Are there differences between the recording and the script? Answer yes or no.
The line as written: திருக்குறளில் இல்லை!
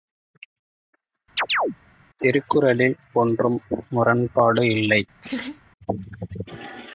yes